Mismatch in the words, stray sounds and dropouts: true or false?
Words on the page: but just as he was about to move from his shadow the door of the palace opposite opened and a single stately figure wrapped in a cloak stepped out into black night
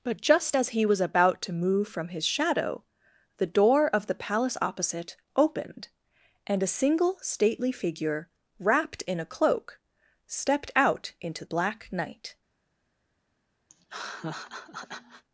true